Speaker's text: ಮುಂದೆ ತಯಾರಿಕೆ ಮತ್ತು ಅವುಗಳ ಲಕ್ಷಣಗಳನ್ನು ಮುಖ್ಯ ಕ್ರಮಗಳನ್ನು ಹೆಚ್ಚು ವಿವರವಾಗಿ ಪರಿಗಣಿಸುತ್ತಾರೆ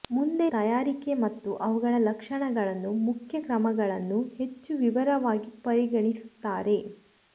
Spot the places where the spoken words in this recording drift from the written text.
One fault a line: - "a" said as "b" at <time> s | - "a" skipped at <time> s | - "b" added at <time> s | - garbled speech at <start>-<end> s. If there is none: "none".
none